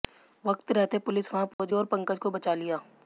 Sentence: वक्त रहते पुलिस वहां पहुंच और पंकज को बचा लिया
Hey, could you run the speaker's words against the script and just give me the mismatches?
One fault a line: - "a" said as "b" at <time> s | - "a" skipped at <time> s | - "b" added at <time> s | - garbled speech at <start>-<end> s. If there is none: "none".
none